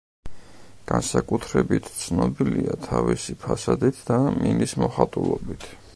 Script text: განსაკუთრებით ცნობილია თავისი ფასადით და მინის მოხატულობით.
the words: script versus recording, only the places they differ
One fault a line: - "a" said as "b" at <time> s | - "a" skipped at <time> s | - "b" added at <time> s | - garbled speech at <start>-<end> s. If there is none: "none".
none